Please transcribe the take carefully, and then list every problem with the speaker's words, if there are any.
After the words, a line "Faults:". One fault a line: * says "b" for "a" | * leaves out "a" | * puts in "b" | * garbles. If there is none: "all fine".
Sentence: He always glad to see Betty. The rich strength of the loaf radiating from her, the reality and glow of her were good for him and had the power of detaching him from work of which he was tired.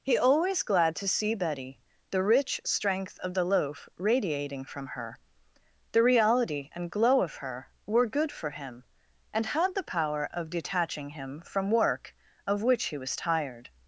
He always glad to see Betty. The rich strength of the loaf radiating from her, the reality and glow of her were good for him and had the power of detaching him from work of which he was tired.
Faults:
all fine